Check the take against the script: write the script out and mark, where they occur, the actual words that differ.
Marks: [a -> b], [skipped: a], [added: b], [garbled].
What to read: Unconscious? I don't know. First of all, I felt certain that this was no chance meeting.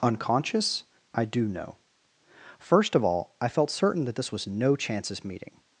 Unconscious? I [don't -> do] know. First of all, I felt certain that this was no [chance -> chances] meeting.